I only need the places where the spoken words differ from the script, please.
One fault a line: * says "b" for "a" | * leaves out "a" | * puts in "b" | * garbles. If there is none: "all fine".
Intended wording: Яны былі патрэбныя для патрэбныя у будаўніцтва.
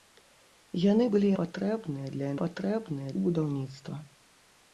all fine